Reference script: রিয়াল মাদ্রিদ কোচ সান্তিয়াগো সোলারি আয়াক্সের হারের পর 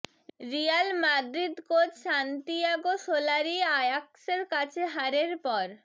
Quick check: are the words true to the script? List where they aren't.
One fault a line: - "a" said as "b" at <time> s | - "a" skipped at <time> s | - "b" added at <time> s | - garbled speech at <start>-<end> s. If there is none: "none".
- "কাছে" added at 4.5 s